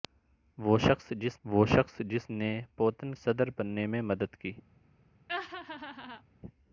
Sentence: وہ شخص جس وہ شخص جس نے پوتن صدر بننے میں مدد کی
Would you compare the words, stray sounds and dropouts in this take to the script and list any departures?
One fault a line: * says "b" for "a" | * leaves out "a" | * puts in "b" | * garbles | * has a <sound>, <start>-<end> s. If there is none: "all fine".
* has a laugh, 5.3-6.2 s